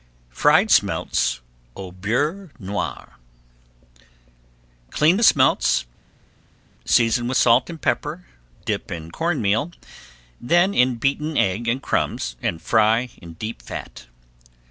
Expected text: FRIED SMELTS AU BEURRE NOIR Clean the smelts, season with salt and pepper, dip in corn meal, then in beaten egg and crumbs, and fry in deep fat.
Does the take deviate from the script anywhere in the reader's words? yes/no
no